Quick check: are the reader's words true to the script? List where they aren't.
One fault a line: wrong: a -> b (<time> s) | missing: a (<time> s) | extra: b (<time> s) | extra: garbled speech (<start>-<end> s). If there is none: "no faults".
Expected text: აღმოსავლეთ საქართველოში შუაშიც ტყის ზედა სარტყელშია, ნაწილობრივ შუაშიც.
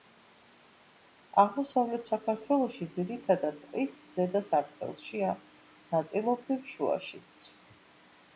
wrong: შუაშიც -> ძირითადად (3.0 s)